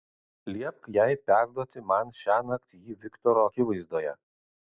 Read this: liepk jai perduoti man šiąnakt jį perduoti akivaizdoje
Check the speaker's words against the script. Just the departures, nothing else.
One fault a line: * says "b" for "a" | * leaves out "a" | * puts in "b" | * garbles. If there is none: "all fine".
* says "viktoro" for "perduoti"